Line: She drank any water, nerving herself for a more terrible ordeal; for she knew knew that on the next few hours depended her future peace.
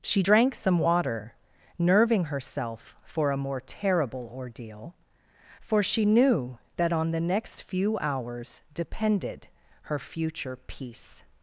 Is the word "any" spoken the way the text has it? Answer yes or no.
no